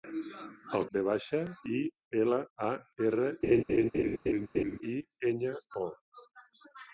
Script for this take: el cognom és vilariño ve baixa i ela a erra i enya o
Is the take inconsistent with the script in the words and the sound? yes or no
yes